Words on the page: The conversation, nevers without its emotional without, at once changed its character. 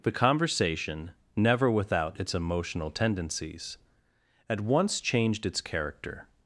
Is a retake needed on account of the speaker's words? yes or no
yes